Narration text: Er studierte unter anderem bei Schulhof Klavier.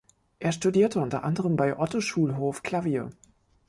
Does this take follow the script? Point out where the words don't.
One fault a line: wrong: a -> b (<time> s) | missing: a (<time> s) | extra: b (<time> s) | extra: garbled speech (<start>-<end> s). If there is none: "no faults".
extra: Otto (1.8 s)